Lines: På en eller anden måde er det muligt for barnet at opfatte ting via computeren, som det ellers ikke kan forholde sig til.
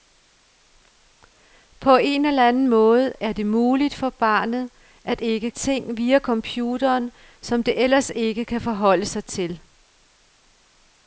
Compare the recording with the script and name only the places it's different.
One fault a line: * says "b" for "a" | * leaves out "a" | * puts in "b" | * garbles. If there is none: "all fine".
* says "ikke" for "opfatte"